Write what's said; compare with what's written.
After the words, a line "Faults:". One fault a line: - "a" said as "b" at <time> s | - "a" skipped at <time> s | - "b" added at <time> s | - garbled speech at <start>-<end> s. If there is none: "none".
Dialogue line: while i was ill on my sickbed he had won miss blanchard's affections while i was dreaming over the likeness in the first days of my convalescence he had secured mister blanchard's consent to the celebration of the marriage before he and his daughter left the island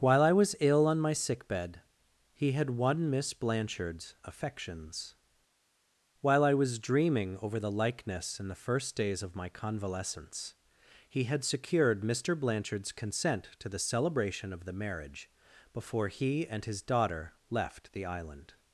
while i was ill on my sickbed he had won miss blanchard's affections while i was dreaming over the likeness in the first days of my convalescence he had secured mister blanchard's consent to the celebration of the marriage before he and his daughter left the island
Faults:
none